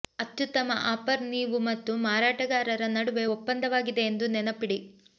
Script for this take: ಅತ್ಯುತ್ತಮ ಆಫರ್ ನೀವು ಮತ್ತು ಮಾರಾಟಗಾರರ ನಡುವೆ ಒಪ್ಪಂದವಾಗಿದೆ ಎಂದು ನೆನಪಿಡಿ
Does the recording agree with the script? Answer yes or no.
yes